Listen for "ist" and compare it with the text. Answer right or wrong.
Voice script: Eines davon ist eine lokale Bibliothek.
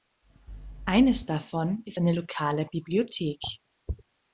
right